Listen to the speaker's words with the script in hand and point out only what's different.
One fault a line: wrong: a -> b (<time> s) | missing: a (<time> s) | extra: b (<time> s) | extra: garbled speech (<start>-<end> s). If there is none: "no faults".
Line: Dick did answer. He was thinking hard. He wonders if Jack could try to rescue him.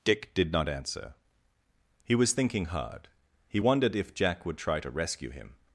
extra: not (0.5 s)
wrong: wonders -> wondered (3.6 s)
wrong: could -> would (4.4 s)